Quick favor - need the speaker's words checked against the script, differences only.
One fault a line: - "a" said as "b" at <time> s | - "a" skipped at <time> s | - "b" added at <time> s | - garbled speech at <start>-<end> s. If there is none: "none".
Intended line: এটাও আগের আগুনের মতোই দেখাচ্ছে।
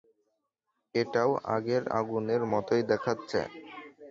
none